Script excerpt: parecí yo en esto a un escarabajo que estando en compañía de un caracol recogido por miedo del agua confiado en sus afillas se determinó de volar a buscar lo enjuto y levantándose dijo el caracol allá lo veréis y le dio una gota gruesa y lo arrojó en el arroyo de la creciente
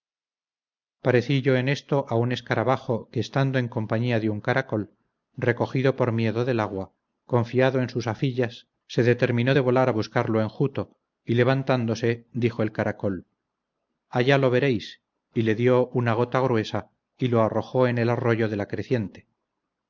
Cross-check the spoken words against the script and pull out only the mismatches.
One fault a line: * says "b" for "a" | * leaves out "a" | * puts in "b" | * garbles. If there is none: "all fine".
all fine